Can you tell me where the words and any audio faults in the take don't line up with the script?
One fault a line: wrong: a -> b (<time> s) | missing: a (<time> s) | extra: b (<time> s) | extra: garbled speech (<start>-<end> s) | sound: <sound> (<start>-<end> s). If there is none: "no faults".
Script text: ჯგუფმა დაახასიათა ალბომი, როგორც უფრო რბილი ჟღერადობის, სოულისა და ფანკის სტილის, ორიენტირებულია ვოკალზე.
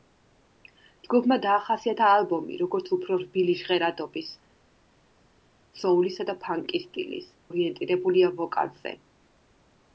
no faults